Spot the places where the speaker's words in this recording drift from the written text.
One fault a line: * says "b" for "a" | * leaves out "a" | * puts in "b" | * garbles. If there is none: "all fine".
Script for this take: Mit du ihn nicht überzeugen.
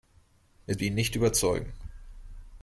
all fine